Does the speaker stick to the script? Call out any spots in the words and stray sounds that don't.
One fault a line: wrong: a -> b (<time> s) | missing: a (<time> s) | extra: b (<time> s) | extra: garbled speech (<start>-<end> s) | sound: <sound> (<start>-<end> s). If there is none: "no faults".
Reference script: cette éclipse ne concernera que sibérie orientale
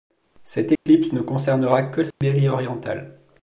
sound: dropout (0.8-0.9 s)
sound: dropout (2.1-2.2 s)